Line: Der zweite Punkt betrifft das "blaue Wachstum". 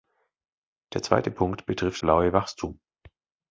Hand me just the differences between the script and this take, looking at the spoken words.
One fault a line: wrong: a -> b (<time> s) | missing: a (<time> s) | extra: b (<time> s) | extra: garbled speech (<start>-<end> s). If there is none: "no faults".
missing: das (2.0 s)